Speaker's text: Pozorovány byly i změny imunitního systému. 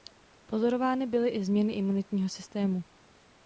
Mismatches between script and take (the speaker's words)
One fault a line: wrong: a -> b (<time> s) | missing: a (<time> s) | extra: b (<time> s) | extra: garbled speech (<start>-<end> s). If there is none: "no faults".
no faults